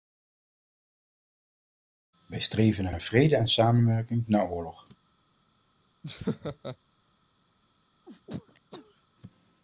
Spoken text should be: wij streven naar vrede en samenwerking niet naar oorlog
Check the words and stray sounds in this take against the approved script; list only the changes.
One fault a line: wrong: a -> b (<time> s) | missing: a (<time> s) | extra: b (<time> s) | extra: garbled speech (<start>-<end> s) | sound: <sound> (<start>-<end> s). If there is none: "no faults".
extra: naar (2.9 s)
missing: niet (4.3 s)
sound: laugh (6.0-6.8 s)
sound: sneeze (8.0-9.0 s)